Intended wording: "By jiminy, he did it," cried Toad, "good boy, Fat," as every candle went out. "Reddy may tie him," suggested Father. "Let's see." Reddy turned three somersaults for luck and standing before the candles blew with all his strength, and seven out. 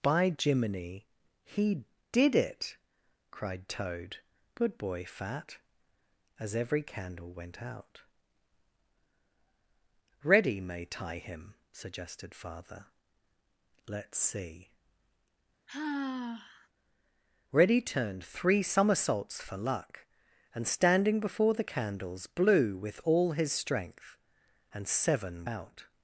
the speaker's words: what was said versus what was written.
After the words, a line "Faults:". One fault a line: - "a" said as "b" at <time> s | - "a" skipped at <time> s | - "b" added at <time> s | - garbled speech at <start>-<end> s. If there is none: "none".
"By jiminy, he did it," cried Toad, "good boy, Fat," as every candle went out. "Reddy may tie him," suggested Father. "Let's see." Reddy turned three somersaults for luck and standing before the candles blew with all his strength, and seven out.
Faults:
none